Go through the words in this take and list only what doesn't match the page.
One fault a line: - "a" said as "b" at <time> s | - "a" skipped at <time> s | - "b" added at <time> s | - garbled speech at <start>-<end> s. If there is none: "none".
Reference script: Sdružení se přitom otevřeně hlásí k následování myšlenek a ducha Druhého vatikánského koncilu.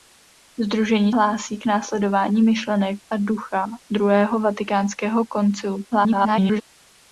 - "se přitom otevřeně" skipped at 1.1 s
- garbled speech at 5.9-6.6 s